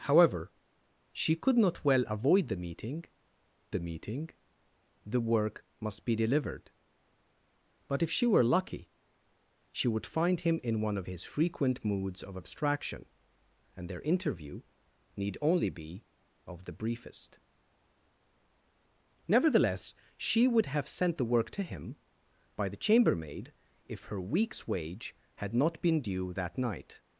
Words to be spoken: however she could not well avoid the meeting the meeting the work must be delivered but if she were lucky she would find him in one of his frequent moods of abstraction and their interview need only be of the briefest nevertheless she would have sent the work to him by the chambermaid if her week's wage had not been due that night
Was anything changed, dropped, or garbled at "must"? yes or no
no